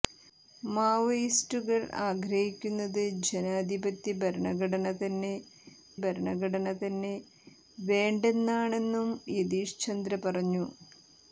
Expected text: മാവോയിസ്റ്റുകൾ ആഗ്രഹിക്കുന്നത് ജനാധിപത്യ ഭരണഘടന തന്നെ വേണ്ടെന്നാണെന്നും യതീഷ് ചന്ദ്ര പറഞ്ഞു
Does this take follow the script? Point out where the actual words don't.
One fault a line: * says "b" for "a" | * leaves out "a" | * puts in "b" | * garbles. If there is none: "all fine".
* puts in "ഭരണഘടന തന്നെ"